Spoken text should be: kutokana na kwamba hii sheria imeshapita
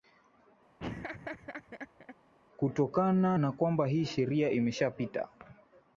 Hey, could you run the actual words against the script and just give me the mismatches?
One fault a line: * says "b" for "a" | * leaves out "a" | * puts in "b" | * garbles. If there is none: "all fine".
all fine